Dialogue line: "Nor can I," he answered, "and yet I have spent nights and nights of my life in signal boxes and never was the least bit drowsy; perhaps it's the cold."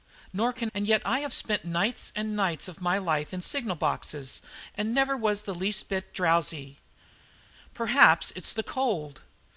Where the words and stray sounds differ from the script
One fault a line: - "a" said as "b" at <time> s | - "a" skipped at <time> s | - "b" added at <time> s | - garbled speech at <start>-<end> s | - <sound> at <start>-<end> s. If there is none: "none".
- "I he answered" skipped at 0.7 s